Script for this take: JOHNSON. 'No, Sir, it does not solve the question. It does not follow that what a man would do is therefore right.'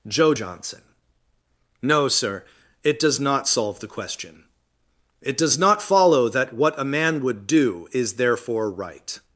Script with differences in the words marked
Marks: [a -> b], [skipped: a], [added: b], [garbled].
[added: joe] JOHNSON. 'No, Sir, it does not solve the question. It does not follow that what a man would do is therefore right.'